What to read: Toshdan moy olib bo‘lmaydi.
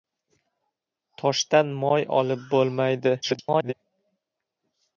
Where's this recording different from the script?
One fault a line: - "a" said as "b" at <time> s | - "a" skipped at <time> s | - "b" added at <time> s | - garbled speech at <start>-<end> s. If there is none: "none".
- garbled speech at 3.2-3.7 s